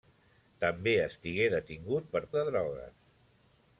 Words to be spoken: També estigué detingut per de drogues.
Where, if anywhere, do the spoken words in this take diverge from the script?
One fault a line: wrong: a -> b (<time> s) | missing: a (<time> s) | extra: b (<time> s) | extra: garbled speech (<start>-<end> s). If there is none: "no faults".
no faults